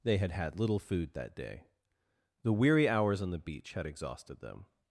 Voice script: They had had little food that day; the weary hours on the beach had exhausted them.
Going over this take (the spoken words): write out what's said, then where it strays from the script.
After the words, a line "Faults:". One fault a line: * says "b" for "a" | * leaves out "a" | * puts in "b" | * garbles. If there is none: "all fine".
They had had little food that day; the weary hours on the beach had exhausted them.
Faults:
all fine